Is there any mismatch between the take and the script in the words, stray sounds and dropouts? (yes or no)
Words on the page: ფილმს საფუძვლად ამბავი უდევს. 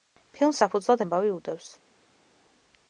no